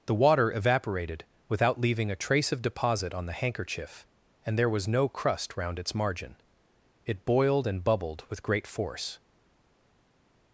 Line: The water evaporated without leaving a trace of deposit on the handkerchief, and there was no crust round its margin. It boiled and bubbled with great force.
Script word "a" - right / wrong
right